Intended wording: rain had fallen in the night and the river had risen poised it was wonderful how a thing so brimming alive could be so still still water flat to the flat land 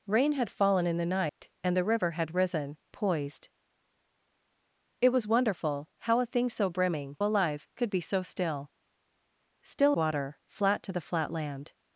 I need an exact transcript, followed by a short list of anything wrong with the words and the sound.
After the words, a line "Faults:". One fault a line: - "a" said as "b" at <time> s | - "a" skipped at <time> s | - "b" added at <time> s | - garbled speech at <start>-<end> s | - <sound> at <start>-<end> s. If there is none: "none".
rain had fallen in the night and the river had risen poised it was wonderful how a thing so brimming alive could be so still still water flat to the flat land
Faults:
- dropout at 1.3-1.4 s